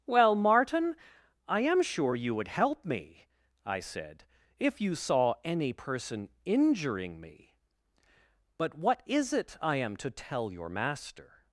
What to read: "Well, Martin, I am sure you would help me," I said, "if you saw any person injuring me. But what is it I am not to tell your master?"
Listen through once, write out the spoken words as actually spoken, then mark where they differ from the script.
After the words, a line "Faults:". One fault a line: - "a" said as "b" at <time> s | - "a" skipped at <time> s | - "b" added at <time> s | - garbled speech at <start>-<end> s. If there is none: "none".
"Well, Martin, I am sure you would help me," I said, "if you saw any person injuring me. But what is it I am to tell your master?"
Faults:
- "not" skipped at 10.0 s